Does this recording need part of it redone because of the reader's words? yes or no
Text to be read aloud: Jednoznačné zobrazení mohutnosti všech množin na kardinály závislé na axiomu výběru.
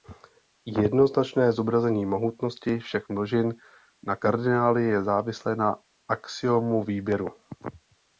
yes